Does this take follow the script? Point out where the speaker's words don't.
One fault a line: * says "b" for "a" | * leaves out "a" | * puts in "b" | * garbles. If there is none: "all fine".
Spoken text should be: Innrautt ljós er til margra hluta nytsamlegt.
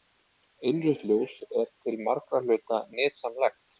all fine